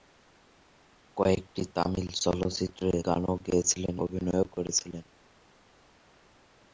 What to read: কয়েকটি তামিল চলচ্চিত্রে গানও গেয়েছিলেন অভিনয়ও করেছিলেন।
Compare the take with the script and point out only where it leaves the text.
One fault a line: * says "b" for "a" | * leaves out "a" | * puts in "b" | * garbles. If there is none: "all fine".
all fine